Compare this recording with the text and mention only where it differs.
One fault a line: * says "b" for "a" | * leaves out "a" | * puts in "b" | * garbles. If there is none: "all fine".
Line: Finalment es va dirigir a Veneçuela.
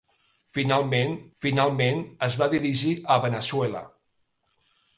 * puts in "finalment"